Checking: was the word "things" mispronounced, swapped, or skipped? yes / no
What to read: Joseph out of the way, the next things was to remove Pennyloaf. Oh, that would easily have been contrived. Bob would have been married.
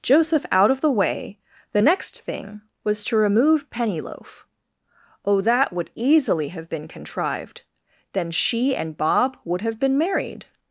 yes